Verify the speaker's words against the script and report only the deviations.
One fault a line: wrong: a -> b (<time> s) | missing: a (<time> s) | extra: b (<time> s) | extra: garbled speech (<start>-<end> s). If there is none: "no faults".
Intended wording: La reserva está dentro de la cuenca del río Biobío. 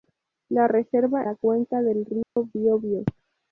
missing: está dentro de (1.2 s)